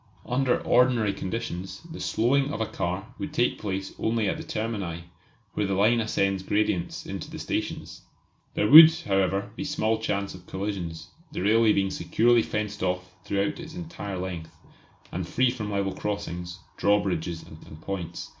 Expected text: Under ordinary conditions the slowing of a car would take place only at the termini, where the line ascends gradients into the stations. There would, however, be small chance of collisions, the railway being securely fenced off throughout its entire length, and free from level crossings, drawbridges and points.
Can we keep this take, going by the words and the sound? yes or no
no